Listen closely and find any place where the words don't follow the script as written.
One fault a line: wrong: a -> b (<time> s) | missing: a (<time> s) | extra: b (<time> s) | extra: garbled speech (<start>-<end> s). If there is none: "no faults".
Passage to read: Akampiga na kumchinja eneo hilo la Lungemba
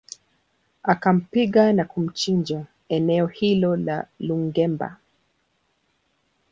no faults